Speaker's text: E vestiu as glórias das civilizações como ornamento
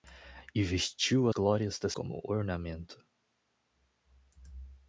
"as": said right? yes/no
no